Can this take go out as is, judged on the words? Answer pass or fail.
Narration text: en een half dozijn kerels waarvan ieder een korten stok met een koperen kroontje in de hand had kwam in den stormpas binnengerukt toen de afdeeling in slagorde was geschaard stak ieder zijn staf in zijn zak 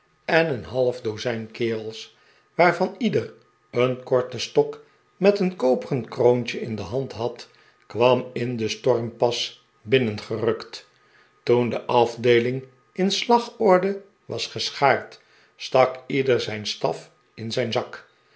pass